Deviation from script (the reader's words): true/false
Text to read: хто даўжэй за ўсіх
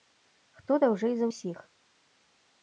false